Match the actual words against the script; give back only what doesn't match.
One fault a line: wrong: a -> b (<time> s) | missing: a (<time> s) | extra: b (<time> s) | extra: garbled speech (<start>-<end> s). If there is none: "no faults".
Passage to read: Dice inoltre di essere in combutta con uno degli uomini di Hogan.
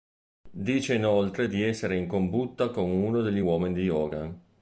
no faults